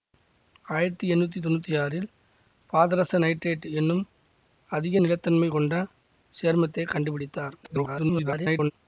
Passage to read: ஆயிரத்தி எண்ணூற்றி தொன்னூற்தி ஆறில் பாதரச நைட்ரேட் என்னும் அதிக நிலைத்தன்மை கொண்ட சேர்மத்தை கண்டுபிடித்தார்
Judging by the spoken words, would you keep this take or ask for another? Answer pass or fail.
fail